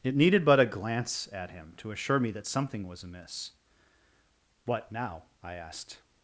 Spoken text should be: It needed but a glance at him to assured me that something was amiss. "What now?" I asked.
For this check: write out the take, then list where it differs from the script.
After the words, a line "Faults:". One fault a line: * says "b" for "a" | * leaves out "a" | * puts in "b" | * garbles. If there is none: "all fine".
It needed but a glance at him to assure me that something was amiss. "What now?" I asked.
Faults:
* says "assure" for "assured"